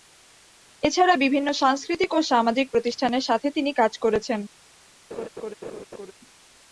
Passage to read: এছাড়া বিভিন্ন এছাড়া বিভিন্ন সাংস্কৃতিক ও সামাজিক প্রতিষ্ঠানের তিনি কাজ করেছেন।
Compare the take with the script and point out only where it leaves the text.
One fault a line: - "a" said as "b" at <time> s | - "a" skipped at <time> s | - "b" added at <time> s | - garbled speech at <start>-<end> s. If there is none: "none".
- "এছাড়া বিভিন্ন" skipped at 1.5 s
- "সাথে" added at 3.2 s